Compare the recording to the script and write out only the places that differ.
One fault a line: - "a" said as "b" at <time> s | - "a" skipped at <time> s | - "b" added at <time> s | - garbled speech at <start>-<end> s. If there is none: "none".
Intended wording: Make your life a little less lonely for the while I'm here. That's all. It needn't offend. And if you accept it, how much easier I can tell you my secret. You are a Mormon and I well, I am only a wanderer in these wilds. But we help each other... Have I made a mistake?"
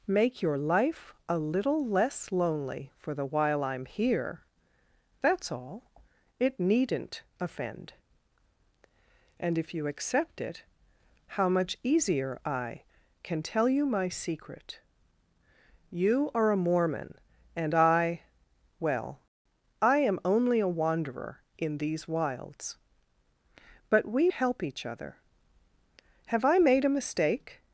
none